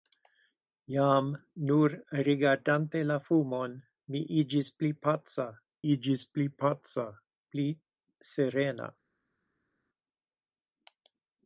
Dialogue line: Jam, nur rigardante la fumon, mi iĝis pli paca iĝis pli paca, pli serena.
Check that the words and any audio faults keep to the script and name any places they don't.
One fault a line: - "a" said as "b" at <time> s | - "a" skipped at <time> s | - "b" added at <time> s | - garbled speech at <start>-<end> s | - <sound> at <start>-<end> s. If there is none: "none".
none